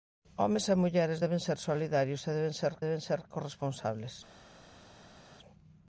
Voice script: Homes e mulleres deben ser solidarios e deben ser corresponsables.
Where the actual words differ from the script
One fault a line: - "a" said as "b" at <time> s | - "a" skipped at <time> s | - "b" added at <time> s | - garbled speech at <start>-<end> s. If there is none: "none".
- "deben ser" added at 2.9 s